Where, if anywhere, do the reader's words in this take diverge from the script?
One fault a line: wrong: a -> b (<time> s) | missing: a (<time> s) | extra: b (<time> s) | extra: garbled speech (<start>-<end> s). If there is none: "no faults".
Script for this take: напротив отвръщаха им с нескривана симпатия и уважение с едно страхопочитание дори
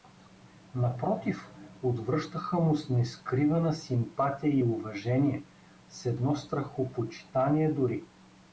wrong: им -> му (2.6 s)